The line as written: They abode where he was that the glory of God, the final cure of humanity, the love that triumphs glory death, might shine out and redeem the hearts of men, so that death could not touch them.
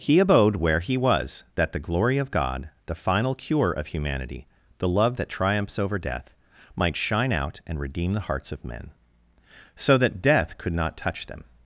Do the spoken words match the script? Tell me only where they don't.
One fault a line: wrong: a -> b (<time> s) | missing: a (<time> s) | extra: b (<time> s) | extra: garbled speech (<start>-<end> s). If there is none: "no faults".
wrong: They -> He (0.0 s)
wrong: glory -> over (5.8 s)